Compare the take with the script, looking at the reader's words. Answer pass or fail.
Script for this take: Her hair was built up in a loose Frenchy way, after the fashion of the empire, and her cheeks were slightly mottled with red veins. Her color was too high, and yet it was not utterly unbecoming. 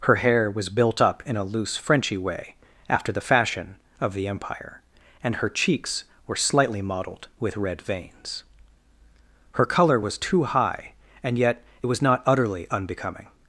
pass